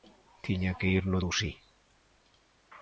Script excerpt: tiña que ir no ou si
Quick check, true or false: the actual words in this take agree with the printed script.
true